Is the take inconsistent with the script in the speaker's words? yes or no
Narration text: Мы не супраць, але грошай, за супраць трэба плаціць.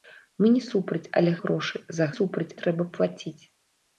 no